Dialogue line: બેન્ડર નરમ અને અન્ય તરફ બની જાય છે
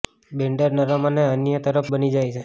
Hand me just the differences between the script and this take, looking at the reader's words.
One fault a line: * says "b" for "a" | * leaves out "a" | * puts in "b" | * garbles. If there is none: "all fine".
all fine